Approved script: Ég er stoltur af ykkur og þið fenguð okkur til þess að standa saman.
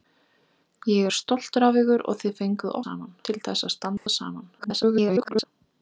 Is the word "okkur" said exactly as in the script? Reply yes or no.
no